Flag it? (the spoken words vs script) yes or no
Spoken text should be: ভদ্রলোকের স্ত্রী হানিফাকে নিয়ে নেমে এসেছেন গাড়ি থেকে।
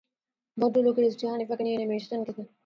yes